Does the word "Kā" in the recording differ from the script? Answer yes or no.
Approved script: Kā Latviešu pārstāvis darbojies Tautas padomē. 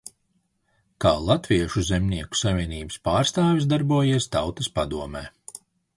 no